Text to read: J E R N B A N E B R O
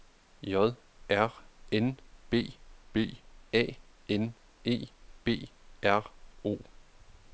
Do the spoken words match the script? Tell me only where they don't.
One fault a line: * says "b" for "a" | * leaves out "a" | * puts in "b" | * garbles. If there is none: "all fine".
* leaves out "E"
* puts in "B"